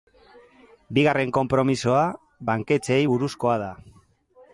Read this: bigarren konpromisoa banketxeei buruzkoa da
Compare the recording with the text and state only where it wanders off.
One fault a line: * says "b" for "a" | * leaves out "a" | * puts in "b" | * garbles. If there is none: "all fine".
all fine